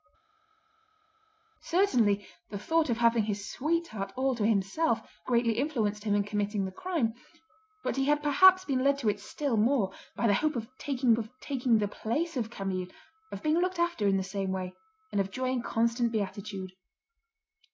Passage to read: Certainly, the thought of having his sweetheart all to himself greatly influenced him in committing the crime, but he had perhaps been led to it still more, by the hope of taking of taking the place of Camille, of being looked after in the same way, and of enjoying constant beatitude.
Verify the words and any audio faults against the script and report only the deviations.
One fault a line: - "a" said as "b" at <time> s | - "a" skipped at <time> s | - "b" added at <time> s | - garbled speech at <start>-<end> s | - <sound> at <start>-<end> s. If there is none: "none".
none